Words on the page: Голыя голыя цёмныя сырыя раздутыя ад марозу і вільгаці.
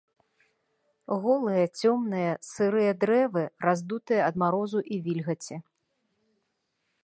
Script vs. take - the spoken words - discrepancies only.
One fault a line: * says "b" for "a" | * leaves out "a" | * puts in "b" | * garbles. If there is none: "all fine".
* leaves out "голыя"
* puts in "дрэвы"